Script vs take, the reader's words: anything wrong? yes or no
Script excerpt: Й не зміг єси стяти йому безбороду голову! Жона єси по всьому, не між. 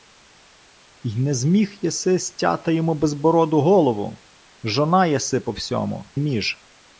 yes